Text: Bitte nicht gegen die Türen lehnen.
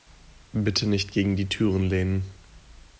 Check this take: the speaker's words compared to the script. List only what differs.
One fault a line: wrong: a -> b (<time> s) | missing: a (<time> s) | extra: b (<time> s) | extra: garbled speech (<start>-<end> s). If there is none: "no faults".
no faults